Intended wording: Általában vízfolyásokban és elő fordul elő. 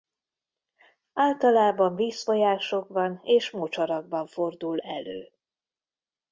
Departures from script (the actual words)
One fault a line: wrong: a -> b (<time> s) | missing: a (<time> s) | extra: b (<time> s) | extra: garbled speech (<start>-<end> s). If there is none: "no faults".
wrong: elő -> mocsarakban (3.5 s)